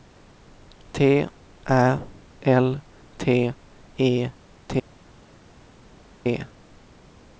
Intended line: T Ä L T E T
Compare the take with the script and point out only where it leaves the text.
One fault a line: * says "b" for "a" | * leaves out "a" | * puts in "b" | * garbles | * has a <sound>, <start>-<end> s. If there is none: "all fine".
all fine